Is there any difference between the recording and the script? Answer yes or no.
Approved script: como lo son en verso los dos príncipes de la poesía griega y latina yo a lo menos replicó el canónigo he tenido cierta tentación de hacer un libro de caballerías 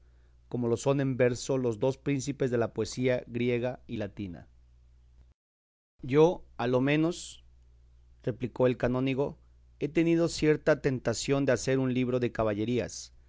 no